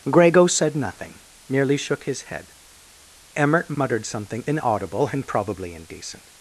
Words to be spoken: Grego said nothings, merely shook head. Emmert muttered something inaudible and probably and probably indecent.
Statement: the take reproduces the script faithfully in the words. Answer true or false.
false